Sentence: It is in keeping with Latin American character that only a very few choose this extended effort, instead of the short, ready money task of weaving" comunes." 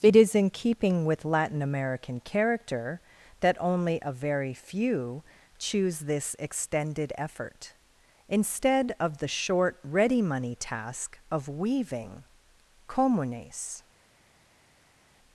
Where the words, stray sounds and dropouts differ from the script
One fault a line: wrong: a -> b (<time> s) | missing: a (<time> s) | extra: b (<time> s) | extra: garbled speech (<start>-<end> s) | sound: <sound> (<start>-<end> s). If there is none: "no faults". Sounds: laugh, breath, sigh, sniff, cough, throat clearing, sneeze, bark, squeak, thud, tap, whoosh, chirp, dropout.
no faults